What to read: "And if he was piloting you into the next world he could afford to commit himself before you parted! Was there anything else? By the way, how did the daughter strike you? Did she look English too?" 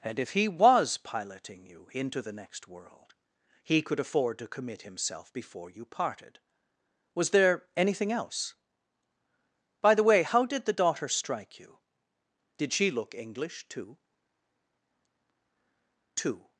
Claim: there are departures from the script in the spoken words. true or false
true